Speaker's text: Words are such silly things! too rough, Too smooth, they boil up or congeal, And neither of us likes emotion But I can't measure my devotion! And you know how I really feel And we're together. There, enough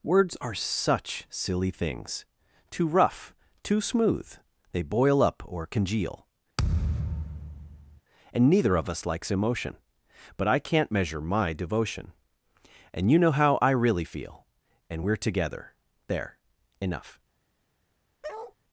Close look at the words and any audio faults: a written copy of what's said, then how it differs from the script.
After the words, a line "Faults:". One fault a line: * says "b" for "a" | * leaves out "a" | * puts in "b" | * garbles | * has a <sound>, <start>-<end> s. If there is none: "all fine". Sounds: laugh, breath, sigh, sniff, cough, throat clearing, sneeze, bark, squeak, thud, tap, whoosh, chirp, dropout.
Words are such silly things! too rough, Too smooth, they boil up or congeal, And neither of us likes emotion But I can't measure my devotion! And you know how I really feel And we're together. There, enough
Faults:
* has a thud, 6.6-8.0 s
* has a bark, 18.2-18.5 s